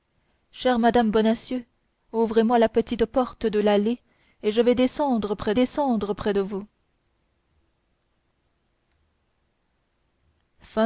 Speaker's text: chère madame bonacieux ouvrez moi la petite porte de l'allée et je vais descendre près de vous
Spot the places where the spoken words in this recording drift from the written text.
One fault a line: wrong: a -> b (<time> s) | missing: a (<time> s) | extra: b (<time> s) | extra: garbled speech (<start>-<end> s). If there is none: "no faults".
extra: descendre près (5.5 s)